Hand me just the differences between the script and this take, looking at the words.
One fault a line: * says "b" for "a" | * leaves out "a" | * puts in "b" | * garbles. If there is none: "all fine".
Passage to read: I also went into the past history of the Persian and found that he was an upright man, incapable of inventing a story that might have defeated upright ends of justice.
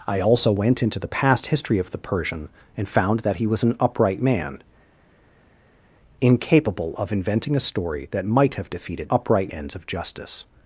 all fine